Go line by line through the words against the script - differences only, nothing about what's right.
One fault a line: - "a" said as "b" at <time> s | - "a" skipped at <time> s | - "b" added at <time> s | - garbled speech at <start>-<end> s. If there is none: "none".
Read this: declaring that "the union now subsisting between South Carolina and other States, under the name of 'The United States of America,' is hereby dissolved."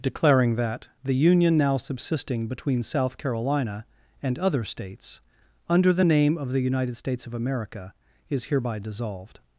none